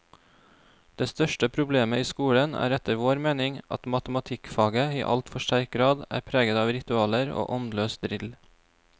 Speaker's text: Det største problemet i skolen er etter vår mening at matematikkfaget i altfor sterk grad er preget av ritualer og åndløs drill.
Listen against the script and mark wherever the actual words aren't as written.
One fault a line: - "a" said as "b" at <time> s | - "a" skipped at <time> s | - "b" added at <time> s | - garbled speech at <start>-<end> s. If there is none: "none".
none